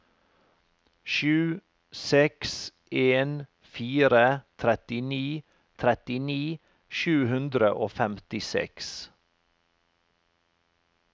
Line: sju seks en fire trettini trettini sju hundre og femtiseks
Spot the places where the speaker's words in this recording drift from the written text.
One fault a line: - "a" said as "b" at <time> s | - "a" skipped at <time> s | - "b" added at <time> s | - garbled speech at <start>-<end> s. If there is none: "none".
none